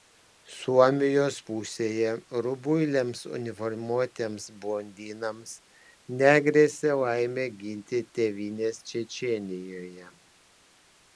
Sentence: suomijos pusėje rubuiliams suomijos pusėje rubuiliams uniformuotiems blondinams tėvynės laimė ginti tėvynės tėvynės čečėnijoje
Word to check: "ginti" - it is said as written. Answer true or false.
true